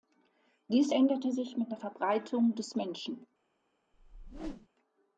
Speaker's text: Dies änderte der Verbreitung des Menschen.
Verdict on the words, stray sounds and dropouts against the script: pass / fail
fail